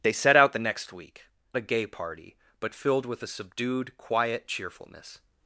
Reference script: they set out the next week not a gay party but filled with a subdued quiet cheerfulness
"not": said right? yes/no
no